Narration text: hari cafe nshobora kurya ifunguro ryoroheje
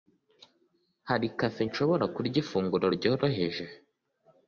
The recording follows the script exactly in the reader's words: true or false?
true